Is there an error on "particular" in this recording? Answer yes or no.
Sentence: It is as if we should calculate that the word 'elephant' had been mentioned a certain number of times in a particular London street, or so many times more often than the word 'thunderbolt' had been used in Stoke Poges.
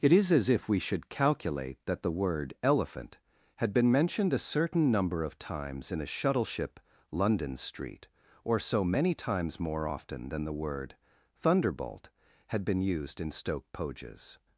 yes